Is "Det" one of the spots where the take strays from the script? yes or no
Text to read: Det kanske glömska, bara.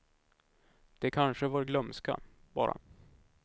no